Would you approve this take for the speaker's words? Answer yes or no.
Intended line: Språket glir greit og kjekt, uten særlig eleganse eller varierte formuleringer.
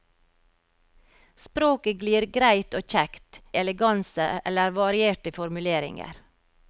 no